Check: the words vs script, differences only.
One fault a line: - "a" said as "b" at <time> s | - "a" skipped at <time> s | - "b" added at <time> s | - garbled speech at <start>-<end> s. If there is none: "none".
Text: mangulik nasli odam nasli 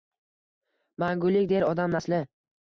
- "nasli" said as "der" at 1.5 s